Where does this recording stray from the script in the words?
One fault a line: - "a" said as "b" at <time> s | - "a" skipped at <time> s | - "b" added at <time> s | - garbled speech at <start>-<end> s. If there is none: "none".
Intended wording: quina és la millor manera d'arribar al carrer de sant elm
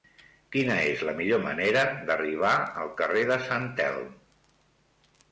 none